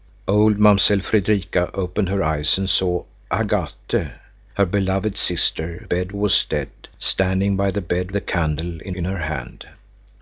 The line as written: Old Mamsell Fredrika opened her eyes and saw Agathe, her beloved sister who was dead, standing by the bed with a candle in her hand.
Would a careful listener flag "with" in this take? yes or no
yes